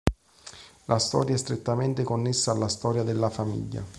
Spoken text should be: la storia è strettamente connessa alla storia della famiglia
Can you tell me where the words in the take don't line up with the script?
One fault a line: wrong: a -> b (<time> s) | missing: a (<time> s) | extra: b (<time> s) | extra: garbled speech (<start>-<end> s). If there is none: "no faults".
no faults